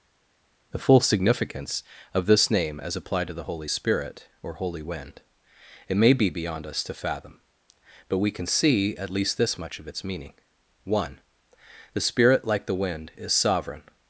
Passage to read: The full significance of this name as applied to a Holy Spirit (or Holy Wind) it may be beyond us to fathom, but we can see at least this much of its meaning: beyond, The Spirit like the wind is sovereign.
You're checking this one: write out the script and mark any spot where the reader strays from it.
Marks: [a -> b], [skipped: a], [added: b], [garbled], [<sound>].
The full significance of this name as applied to [a -> the] Holy Spirit (or Holy Wind) it may be beyond us to fathom, but we can see at least this much of its meaning: [beyond, -> one] The Spirit like the wind is sovereign.